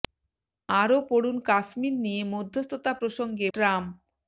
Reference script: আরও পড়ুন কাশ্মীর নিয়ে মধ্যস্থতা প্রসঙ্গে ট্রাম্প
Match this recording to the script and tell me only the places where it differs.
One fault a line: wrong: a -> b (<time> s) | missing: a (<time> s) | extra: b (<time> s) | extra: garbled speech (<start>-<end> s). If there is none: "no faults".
no faults